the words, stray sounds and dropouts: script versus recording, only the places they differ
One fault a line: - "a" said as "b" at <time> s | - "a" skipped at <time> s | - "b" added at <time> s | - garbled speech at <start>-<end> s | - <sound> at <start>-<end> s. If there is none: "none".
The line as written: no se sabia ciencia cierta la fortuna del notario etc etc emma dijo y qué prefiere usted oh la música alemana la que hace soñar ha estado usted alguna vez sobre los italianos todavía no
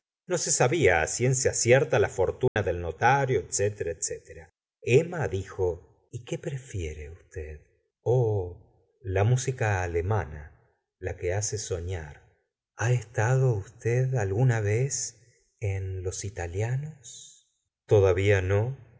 - dropout at 2.5-2.6 s
- "sobre" said as "en" at 15.6 s